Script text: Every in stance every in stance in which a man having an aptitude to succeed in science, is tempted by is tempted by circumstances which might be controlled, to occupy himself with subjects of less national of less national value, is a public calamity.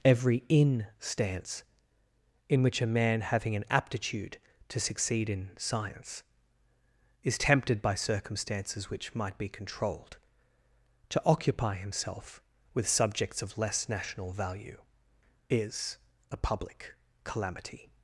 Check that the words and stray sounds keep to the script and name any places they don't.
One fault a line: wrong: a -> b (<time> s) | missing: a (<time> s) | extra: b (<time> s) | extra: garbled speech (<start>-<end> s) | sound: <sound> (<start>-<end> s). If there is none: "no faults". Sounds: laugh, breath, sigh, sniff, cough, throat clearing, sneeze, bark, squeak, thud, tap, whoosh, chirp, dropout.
missing: every (1.6 s)
missing: stance in (2.6 s)
missing: is tempted by (8.0 s)
missing: of less national (14.3 s)